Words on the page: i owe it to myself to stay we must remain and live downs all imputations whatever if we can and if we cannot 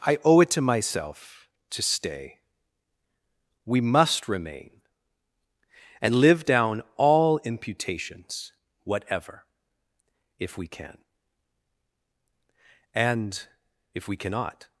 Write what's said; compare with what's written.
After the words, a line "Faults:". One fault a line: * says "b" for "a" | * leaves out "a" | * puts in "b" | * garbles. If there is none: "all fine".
i owe it to myself to stay we must remain and live down all imputations whatever if we can and if we cannot
Faults:
* says "down" for "downs"